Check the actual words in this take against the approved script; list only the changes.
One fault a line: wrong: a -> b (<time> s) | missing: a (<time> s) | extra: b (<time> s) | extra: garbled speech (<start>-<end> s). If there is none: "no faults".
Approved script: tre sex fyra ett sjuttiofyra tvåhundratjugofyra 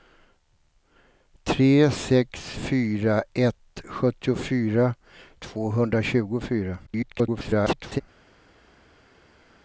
extra: garbled speech (6.9-8.0 s)